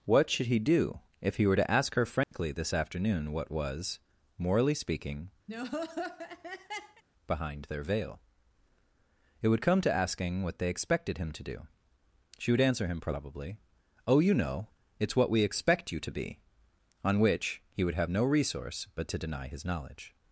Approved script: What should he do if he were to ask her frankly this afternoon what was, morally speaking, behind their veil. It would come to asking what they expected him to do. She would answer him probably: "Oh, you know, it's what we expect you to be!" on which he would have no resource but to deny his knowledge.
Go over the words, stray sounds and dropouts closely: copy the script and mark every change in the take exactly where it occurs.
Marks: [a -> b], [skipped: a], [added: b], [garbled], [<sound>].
What should he do if he were to ask her frankly [dropout] this afternoon what was, morally speaking, [laugh] behind their veil. It would come to asking what they expected him to do. She would answer him probably: "Oh, you know, it's what we expect you to be!" on which he would have no resource but to deny his knowledge.